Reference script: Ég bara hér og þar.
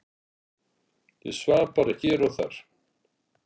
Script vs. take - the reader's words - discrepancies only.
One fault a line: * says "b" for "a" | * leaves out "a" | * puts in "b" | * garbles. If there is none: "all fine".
* puts in "svaf"